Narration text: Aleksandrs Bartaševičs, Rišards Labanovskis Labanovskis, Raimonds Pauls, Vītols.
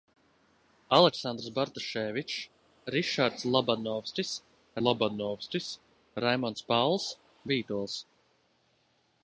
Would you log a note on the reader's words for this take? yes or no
no